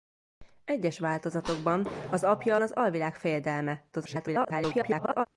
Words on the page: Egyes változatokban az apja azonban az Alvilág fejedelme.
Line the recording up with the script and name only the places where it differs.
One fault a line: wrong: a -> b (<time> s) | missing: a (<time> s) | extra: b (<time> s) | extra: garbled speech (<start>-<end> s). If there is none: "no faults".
missing: azonban (2.6 s)
extra: garbled speech (3.9-5.3 s)